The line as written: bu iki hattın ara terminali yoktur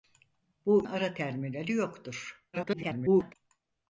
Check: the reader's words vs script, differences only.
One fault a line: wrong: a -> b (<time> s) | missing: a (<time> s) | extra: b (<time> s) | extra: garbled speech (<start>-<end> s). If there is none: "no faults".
missing: iki hattın (0.9 s)
extra: garbled speech (2.5-3.3 s)